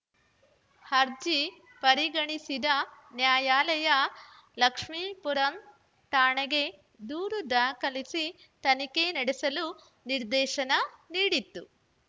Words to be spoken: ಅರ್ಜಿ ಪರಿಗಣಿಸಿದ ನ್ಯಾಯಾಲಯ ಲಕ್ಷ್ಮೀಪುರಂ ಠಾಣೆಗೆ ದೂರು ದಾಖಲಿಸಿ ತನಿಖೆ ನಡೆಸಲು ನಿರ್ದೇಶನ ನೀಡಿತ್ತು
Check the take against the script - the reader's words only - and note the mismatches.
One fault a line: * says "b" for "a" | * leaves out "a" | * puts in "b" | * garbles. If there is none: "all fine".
all fine